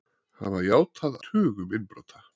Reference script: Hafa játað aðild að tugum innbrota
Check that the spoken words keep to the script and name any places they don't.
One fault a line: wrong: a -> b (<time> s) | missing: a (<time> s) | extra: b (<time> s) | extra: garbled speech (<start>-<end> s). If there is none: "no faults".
missing: aðild að (1.2 s)